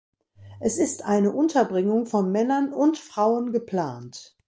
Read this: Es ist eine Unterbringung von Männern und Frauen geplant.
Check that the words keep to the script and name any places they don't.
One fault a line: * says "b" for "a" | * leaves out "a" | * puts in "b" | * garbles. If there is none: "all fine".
all fine